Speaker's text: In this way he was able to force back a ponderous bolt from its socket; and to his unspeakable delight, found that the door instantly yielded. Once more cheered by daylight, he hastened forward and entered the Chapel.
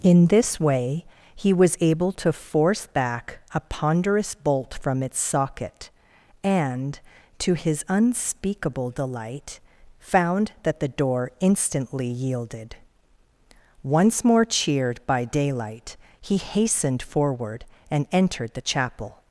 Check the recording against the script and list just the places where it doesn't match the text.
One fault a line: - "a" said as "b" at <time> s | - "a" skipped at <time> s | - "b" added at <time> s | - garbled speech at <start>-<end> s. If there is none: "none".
none